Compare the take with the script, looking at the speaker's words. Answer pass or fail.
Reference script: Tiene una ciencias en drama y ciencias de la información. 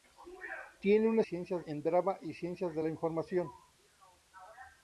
pass